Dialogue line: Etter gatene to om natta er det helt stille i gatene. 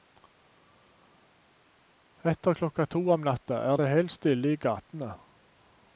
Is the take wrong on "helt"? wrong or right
right